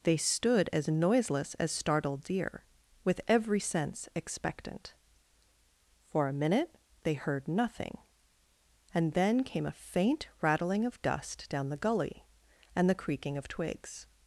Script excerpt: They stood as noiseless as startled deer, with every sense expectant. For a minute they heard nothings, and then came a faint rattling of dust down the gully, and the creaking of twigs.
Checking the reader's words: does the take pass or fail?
fail